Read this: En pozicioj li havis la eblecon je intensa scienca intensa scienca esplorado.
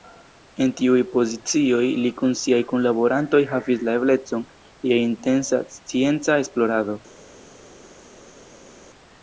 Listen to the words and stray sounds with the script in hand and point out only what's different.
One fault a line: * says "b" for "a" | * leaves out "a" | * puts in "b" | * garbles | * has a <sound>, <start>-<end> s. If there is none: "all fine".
* puts in "tiuj"
* puts in "kun siaj kunlaborantoj"
* leaves out "intensa scienca"